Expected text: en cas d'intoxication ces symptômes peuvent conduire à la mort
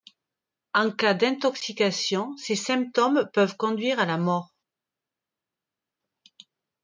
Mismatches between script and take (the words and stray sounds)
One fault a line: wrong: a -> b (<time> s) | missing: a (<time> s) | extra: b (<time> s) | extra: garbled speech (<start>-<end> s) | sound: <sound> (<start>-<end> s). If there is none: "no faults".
no faults